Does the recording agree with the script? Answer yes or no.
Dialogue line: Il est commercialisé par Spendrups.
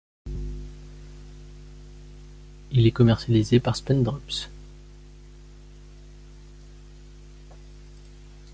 yes